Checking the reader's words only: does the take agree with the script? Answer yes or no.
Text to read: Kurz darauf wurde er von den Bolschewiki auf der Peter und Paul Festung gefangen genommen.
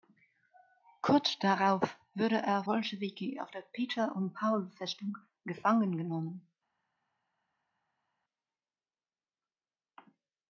no